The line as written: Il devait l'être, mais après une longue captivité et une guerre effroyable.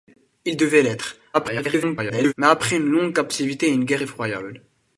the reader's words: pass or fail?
fail